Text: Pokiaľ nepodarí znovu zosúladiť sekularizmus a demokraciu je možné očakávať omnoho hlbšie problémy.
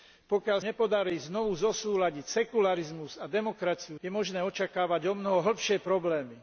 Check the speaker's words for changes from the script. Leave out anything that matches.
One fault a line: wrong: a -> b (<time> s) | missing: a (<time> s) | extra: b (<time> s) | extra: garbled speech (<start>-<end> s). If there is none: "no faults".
no faults